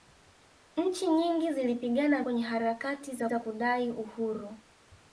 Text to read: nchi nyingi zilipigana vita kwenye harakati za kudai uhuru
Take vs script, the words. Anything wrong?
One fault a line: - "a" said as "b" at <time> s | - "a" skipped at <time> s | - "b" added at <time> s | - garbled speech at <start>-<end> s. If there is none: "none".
- "vita" skipped at 2.2 s
- "za" added at 3.2 s